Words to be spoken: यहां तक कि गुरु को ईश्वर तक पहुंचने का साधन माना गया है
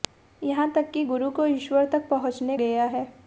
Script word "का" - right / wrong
wrong